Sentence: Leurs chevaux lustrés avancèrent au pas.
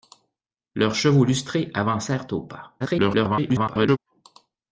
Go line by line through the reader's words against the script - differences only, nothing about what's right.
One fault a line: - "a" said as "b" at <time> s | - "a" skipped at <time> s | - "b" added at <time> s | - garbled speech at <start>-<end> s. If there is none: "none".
- garbled speech at 2.8-4.0 s